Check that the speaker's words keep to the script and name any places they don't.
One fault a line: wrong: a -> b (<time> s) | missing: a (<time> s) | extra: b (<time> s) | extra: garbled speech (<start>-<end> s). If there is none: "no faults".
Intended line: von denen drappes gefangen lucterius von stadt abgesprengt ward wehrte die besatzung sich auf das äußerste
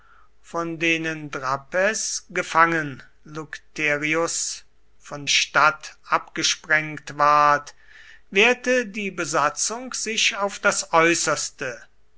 no faults